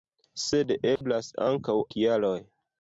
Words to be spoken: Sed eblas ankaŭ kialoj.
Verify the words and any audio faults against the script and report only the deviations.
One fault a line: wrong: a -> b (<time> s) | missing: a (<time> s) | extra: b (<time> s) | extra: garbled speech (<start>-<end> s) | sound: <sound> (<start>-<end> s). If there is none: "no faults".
sound: dropout (1.0-1.0 s)